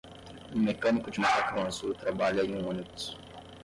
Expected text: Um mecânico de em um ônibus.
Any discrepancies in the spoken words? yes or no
yes